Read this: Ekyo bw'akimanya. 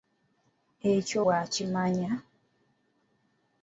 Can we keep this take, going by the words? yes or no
yes